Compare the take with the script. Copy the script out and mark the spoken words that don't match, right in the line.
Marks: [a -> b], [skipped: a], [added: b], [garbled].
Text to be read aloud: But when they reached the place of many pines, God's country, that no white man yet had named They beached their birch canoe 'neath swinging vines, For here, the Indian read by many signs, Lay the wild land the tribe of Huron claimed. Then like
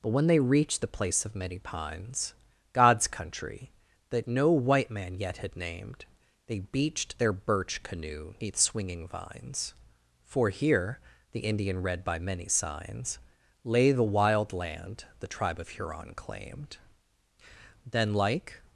But when they reached the place of many pines, God's country, that no white man yet had named They beached their birch canoe 'neath swinging vines, For here, the Indian read by many signs, Lay the wild land the tribe of Huron claimed. Then like